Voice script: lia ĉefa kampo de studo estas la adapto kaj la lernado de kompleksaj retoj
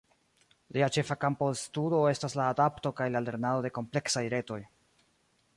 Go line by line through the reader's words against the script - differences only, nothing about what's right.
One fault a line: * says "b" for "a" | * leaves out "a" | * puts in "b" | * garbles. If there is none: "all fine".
all fine